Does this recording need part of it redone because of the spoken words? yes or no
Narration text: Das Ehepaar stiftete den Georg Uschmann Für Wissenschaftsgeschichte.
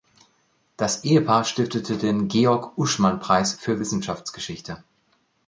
yes